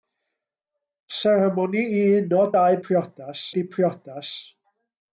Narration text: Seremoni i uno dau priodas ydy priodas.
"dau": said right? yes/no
yes